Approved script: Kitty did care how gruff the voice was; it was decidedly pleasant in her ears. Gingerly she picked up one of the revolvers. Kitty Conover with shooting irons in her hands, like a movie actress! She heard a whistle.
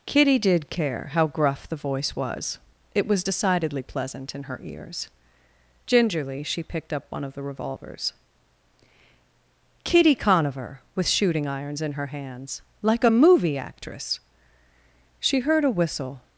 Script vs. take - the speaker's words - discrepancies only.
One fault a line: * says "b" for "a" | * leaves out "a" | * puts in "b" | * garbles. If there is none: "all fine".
all fine